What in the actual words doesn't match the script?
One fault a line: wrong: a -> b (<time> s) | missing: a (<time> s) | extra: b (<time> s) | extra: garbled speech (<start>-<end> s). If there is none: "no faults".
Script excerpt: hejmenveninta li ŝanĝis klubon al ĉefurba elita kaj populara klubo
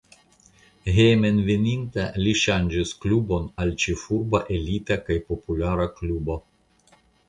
no faults